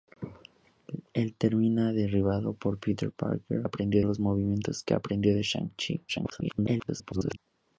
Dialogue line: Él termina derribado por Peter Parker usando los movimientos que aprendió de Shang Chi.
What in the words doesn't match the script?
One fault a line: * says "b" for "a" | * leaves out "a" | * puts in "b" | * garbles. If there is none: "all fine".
* says "aprendió" for "usando"
* garbles